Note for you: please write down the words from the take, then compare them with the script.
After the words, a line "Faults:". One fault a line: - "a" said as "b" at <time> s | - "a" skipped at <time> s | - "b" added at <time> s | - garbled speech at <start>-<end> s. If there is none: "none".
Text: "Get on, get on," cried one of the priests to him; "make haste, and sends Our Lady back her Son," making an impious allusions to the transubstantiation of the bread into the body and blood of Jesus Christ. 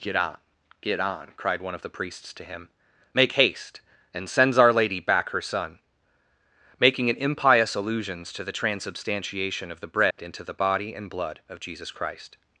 "Get on, get on," cried one of the priests to him; "make haste, and sends Our Lady back her Son," making an impious allusions to the transubstantiation of the bread into the body and blood of Jesus Christ.
Faults:
none